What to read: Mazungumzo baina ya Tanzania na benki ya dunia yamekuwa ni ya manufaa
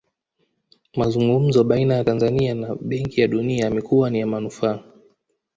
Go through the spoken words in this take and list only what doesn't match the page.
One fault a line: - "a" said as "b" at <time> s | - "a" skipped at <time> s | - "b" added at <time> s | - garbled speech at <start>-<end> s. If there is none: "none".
none